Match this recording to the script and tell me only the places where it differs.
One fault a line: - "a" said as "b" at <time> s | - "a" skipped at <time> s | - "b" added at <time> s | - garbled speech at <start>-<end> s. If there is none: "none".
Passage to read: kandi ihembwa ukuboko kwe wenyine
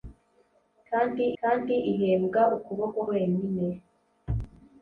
- "kandi" added at 1.4 s
- "kwe" skipped at 3.0 s